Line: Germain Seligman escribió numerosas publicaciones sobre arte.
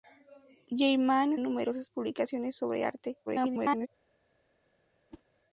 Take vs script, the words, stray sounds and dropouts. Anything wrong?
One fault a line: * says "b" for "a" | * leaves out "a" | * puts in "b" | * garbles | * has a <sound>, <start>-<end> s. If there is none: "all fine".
* leaves out "Seligman escribió"
* garbles
* has a whoosh, 5.1-5.2 s